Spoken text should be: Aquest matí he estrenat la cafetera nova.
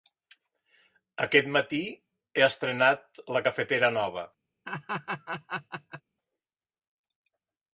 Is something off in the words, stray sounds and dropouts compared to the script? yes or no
yes